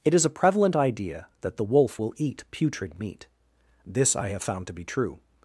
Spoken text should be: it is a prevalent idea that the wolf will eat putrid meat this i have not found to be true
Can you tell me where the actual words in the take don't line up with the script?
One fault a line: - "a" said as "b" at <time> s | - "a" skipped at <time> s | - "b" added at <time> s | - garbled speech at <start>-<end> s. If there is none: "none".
- "not" skipped at 4.4 s